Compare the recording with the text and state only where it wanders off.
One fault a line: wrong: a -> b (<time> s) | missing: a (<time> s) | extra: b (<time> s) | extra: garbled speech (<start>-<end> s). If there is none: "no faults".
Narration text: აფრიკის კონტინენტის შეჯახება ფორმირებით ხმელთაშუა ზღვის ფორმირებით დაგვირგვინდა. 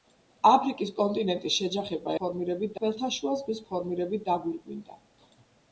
no faults